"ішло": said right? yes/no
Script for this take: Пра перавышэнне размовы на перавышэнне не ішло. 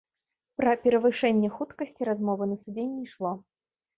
yes